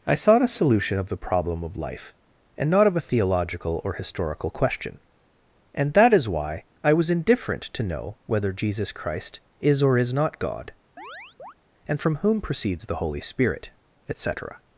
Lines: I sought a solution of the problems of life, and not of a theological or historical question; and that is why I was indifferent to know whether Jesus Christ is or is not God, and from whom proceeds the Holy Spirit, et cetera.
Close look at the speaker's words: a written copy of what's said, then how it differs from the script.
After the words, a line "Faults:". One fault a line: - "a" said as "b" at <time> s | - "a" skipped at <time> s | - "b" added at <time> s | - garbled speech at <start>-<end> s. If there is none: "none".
I sought a solution of the problem of life, and not of a theological or historical question; and that is why I was indifferent to know whether Jesus Christ is or is not God, and from whom proceeds the Holy Spirit, et cetera.
Faults:
- "problems" said as "problem" at 1.2 s